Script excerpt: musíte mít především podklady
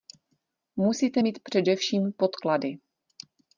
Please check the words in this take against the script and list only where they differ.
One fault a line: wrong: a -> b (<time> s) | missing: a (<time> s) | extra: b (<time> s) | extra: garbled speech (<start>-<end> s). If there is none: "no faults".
no faults